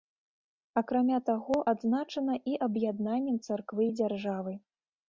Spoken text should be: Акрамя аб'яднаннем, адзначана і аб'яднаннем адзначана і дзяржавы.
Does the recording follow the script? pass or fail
fail